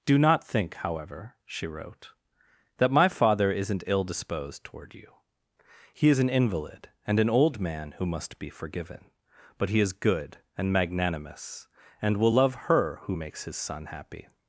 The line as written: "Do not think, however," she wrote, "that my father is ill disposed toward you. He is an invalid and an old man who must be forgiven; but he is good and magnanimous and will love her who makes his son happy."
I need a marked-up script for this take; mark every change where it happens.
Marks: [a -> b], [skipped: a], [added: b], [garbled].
"Do not think, however," she wrote, "that my father [is -> isn't] ill disposed toward you. He is an invalid and an old man who must be forgiven; but he is good and magnanimous and will love her who makes his son happy."